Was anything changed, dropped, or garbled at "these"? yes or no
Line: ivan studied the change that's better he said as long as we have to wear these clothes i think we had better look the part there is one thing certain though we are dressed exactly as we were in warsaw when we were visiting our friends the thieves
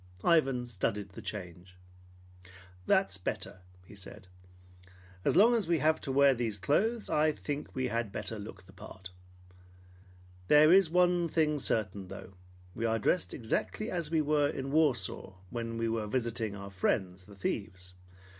no